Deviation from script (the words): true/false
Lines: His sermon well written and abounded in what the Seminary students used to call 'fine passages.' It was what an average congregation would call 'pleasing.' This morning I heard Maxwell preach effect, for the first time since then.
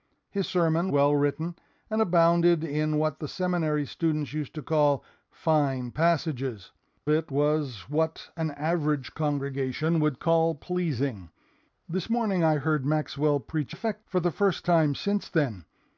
false